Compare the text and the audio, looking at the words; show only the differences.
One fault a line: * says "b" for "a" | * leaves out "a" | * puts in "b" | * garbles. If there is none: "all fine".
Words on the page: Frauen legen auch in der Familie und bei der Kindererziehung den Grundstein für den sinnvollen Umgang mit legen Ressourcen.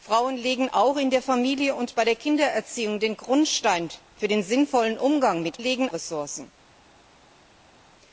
all fine